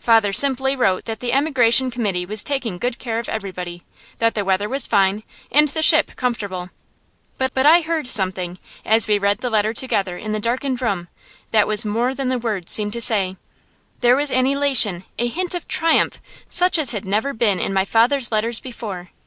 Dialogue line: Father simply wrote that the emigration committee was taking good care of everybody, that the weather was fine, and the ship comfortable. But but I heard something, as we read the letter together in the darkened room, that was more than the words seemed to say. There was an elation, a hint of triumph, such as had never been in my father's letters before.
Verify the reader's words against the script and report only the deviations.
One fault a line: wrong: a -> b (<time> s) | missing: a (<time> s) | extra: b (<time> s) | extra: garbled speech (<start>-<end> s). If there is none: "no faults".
no faults